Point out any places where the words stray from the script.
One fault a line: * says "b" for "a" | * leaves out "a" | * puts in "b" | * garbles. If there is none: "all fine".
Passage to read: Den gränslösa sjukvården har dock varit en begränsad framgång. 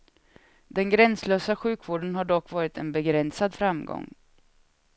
all fine